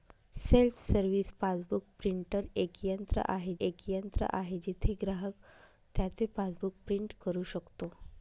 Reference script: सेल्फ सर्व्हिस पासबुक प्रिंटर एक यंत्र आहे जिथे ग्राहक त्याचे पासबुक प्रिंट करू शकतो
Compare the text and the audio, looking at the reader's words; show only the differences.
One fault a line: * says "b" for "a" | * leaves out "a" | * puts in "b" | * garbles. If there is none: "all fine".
* puts in "एक यंत्र आहे"